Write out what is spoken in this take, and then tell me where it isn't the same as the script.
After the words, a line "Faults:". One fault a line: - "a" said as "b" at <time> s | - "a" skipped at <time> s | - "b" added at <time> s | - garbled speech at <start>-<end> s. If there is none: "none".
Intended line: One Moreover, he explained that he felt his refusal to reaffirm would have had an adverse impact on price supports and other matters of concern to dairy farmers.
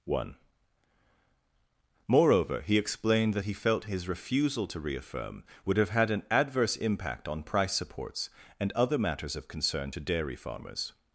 One Moreover, he explained that he felt his refusal to reaffirm would have had an adverse impact on price supports and other matters of concern to dairy farmers.
Faults:
none